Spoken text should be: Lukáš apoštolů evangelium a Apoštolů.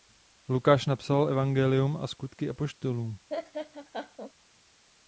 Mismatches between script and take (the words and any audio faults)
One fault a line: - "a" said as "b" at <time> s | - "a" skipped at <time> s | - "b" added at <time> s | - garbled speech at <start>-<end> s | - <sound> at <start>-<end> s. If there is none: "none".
- "apoštolů" said as "napsal" at 0.8 s
- "Skutky" added at 2.1 s
- laugh at 3.3-4.3 s